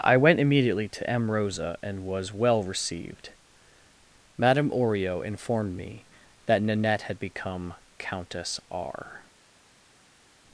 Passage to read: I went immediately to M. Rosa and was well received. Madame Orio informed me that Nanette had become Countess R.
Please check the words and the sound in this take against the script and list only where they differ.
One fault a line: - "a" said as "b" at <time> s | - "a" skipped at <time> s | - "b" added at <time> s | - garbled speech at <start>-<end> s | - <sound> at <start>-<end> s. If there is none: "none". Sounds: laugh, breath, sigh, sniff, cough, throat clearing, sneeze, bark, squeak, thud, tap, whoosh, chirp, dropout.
none